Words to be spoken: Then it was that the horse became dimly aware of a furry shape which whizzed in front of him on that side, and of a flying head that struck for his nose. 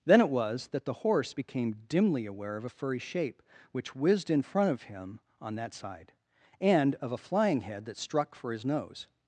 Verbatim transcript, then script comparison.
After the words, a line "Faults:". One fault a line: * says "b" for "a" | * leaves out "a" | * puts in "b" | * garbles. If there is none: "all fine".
Then it was that the horse became dimly aware of a furry shape which whizzed in front of him on that side, and of a flying head that struck for his nose.
Faults:
all fine